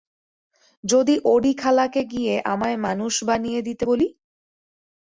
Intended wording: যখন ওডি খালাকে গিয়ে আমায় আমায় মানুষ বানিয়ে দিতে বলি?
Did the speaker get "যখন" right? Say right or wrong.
wrong